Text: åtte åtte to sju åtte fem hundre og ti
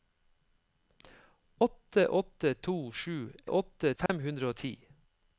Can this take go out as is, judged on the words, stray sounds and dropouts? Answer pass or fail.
fail